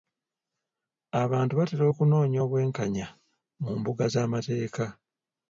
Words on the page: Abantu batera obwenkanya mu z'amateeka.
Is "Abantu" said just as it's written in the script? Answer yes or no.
yes